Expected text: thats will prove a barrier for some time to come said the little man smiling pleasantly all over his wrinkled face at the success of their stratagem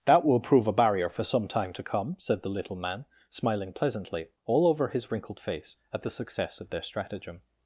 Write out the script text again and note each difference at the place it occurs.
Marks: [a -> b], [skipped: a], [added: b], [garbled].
[thats -> that] will prove a barrier for some time to come said the little man smiling pleasantly all over his wrinkled face at the success of their stratagem